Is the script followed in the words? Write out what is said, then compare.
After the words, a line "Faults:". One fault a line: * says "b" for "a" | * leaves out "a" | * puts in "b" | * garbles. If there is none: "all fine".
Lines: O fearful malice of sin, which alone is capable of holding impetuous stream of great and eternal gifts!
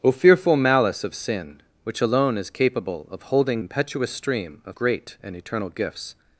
O fearful malice of sin, which alone is capable of holding impetuous stream of great and eternal gifts!
Faults:
all fine